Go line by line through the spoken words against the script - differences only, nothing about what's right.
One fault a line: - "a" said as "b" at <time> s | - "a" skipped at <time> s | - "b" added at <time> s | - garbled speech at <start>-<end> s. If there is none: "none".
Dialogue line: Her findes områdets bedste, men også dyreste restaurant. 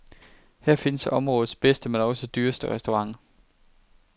none